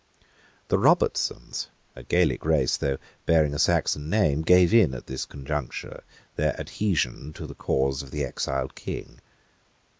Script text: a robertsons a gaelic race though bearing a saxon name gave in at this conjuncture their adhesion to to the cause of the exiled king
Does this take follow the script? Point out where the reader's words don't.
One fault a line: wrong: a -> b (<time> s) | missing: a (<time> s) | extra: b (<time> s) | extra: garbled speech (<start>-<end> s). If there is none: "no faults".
wrong: a -> the (0.7 s)
missing: to (7.5 s)